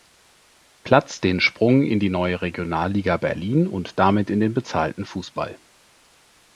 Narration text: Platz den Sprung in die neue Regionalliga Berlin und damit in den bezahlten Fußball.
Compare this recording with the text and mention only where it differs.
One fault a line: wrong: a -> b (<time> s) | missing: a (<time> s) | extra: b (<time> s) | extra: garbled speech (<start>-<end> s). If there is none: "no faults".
no faults